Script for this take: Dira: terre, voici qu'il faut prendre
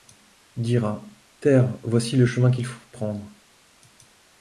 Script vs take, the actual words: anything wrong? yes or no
yes